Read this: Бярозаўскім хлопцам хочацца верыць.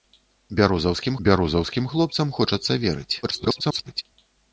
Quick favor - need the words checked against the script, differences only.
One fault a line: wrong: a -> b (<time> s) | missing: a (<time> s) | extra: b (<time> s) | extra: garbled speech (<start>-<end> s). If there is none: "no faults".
extra: бярозаўскім (1.3 s)
extra: garbled speech (3.2-4.0 s)